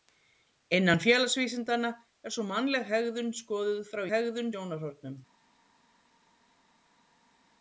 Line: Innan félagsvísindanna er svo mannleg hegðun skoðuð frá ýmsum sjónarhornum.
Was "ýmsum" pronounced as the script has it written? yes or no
no